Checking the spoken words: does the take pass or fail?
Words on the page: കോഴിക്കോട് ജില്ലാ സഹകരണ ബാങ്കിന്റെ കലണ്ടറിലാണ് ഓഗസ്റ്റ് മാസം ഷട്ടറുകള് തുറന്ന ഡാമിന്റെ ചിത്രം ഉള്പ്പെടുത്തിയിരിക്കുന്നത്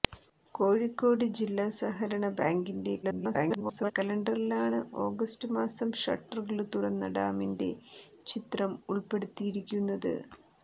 fail